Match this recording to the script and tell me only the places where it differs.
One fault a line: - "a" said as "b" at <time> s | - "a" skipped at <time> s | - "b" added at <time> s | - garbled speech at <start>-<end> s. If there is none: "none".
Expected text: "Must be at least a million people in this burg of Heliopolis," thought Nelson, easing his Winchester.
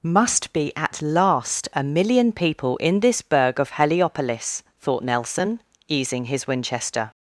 - "least" said as "last" at 1.0 s